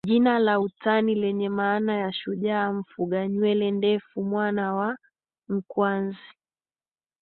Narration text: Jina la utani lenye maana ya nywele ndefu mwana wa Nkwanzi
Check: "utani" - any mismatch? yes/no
no